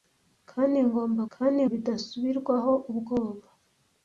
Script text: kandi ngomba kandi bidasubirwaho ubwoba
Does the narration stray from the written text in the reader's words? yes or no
no